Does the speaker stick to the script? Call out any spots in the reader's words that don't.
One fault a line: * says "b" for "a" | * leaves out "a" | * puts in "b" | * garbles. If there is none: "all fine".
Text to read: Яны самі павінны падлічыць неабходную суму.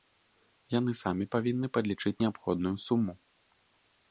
all fine